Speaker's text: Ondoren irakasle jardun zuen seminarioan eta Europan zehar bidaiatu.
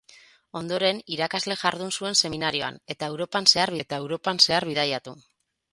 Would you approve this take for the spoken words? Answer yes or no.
no